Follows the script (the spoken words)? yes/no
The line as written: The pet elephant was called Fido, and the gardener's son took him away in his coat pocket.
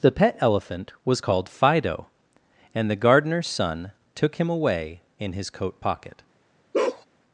yes